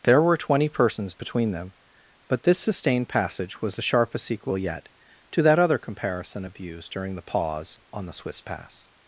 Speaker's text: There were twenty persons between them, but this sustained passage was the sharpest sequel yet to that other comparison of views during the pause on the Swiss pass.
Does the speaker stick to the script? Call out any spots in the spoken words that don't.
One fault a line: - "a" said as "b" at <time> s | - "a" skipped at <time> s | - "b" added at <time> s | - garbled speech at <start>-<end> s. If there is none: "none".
none